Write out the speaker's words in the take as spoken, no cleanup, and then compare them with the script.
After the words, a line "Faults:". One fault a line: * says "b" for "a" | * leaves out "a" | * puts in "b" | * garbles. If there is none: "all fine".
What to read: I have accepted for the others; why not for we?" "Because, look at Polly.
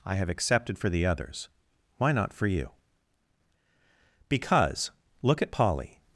I have accepted for the others; why not for you?" "Because, look at Polly.
Faults:
* says "you" for "we"